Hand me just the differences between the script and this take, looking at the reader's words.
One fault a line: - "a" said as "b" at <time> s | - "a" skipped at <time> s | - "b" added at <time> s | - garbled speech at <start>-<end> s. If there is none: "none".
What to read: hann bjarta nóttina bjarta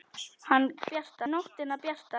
none